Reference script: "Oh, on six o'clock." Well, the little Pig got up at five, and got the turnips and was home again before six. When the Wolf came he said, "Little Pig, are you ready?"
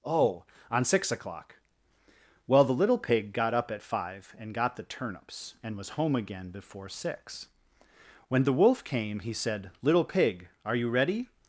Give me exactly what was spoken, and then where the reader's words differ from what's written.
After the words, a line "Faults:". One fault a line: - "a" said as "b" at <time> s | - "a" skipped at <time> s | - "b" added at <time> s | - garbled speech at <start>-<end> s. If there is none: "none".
"Oh, on six o'clock." Well, the little Pig got up at five, and got the turnips and was home again before six. When the Wolf came he said, "Little Pig, are you ready?"
Faults:
none